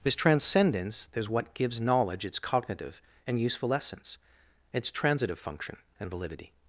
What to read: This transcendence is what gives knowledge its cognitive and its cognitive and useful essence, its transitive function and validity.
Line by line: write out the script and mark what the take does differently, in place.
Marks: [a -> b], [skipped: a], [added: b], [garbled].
This transcendence is what gives knowledge its cognitive and [skipped: its cognitive and] useful essence, its transitive function and validity.